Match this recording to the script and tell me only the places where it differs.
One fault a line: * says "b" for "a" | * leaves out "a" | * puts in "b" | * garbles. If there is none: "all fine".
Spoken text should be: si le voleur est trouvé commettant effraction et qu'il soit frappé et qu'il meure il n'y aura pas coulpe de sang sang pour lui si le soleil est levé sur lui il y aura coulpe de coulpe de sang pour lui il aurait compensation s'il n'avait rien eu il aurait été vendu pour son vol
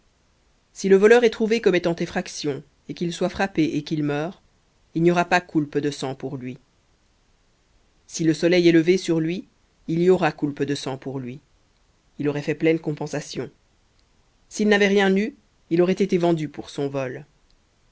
* leaves out "sang"
* leaves out "coulpe de"
* puts in "fait pleine"